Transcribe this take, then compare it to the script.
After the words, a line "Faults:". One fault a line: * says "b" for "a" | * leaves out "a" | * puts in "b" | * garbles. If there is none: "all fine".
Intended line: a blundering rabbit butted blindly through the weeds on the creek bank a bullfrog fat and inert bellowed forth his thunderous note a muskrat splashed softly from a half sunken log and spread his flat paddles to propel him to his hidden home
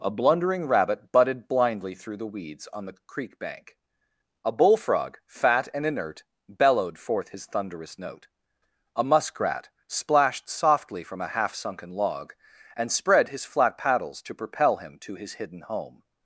a blundering rabbit butted blindly through the weeds on the creek bank a bullfrog fat and inert bellowed forth his thunderous note a muskrat splashed softly from a half sunken log and spread his flat paddles to propel him to his hidden home
Faults:
all fine